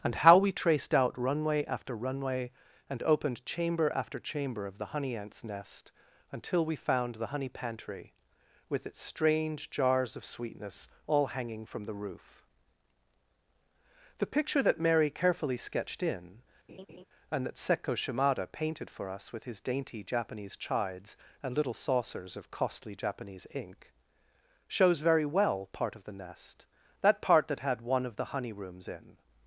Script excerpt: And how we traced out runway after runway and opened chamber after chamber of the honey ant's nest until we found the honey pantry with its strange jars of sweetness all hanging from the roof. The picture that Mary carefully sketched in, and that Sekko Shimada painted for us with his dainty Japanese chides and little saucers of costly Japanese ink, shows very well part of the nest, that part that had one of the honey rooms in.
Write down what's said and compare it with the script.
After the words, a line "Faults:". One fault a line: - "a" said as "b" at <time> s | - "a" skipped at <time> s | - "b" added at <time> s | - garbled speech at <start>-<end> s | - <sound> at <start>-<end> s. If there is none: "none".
And how we traced out runway after runway and opened chamber after chamber of the honey ant's nest until we found the honey pantry with its strange jars of sweetness all hanging from the roof. The picture that Mary carefully sketched in, and that Sekko Shimada painted for us with his dainty Japanese chides and little saucers of costly Japanese ink, shows very well part of the nest, that part that had one of the honey rooms in.
Faults:
- laugh at 16.7-17.1 s